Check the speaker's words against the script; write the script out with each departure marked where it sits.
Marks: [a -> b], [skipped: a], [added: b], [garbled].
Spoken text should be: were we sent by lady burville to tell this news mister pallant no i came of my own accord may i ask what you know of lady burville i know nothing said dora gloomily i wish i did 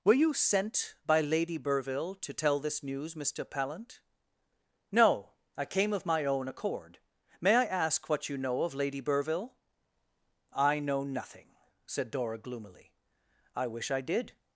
were [we -> you] sent by lady burville to tell this news mister pallant no i came of my own accord may i ask what you know of lady burville i know nothing said dora gloomily i wish i did